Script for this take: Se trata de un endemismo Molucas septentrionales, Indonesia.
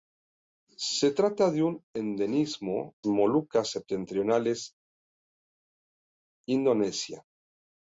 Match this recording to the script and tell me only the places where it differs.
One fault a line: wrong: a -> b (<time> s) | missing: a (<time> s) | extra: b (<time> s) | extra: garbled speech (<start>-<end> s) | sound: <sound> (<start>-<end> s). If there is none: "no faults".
no faults